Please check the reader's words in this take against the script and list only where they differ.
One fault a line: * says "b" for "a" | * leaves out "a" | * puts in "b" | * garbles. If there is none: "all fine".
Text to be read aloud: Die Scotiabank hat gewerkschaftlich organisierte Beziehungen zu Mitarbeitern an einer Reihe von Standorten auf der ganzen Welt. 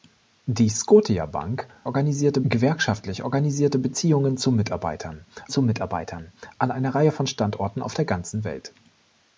* says "organisierte" for "hat"
* puts in "zu Mitarbeitern"